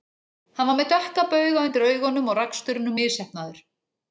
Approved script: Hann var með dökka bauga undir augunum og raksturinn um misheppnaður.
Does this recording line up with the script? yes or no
yes